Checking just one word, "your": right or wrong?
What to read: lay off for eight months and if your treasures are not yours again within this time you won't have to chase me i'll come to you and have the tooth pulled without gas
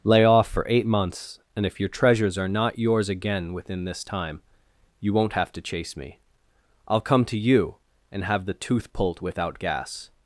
right